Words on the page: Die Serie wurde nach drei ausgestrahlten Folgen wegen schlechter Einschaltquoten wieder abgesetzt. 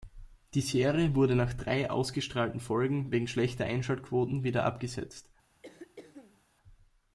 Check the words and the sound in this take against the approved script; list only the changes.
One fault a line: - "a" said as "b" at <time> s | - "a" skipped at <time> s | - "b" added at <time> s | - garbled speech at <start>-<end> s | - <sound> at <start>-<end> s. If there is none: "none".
- throat clearing at 5.6-6.4 s